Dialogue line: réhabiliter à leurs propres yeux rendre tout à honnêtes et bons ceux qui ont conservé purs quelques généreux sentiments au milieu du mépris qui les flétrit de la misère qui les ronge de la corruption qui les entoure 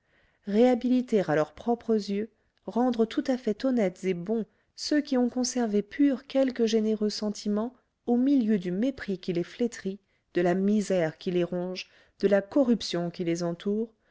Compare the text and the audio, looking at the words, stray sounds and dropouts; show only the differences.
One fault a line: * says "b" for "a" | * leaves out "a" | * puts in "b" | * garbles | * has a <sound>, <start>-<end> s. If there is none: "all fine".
* puts in "fait"